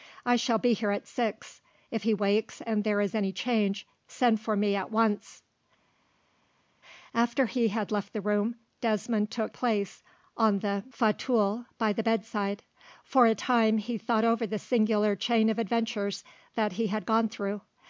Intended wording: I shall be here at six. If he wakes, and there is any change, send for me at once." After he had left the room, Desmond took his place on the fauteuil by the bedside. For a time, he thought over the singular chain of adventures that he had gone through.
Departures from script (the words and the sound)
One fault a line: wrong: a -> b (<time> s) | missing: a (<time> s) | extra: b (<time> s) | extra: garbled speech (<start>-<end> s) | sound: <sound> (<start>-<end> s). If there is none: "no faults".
missing: his (9.5 s)